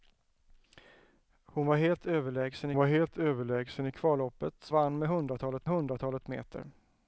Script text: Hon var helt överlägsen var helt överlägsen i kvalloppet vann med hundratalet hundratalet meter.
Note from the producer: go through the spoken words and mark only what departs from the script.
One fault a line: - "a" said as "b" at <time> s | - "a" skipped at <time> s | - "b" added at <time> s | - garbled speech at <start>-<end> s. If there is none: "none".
none